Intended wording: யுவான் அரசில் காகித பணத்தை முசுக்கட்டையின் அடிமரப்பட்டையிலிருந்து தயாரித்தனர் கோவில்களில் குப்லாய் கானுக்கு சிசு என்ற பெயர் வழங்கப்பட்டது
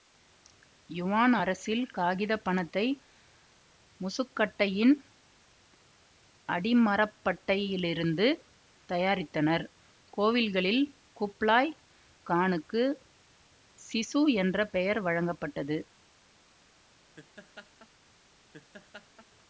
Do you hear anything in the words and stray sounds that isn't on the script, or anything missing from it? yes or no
yes